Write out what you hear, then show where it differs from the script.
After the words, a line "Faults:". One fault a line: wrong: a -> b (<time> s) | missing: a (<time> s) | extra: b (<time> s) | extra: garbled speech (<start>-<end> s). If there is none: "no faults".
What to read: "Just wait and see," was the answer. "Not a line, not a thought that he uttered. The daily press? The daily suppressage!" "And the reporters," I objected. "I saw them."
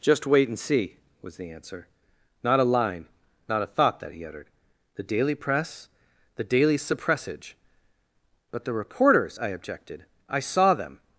"Just wait and see," was the answer. "Not a line, not a thought that he uttered. The daily press? The daily suppressage!" "But the reporters," I objected. "I saw them."
Faults:
wrong: And -> But (8.5 s)